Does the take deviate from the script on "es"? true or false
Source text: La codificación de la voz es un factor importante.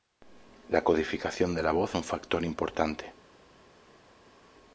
true